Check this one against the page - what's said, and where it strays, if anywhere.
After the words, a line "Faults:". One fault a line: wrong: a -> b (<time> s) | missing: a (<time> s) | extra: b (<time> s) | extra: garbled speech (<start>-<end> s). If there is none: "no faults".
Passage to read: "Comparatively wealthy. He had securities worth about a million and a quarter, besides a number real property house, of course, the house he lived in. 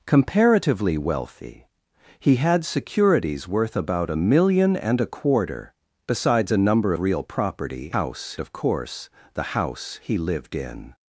"Comparatively wealthy. He had securities worth about a million and a quarter, besides a number real property house, of course, the house he lived in.
Faults:
no faults